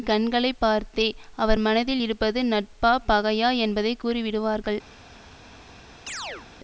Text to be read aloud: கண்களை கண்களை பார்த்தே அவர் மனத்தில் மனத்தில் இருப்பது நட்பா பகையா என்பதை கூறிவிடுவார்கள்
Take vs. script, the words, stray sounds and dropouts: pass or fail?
fail